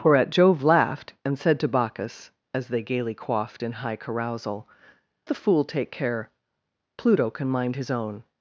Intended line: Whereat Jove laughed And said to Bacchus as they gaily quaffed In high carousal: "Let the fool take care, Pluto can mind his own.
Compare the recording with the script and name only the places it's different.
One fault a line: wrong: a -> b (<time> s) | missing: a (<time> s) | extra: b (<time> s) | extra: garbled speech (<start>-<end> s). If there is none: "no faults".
missing: Let (4.7 s)